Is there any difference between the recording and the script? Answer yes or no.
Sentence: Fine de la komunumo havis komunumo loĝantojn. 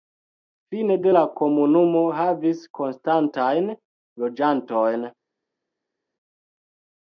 yes